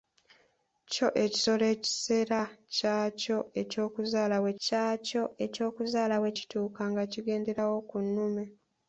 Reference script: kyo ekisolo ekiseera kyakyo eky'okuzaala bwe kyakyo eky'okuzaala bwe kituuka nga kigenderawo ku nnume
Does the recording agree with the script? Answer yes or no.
yes